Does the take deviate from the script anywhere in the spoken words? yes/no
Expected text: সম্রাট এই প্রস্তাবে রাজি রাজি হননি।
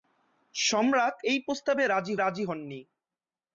no